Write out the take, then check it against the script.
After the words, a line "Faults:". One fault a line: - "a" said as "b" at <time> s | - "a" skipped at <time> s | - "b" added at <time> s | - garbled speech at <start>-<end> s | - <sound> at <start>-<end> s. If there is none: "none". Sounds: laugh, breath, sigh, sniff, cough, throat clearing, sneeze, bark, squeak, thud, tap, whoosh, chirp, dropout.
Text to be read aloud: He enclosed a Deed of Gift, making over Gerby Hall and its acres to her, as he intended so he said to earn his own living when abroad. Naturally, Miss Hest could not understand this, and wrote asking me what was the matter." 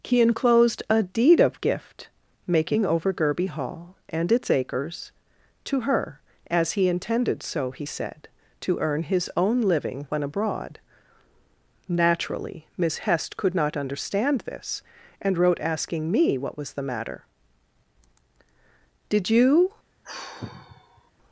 He enclosed a Deed of Gift, making over Gerby Hall and its acres to her, as he intended so he said to earn his own living when abroad. Naturally, Miss Hest could not understand this, and wrote asking me what was the matter." "Did you
Faults:
- "Did you" added at 19.1 s
- sigh at 20.0-21.1 s